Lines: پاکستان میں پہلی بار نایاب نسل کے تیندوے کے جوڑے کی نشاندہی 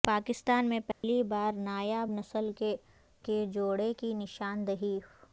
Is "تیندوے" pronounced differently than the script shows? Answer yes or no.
yes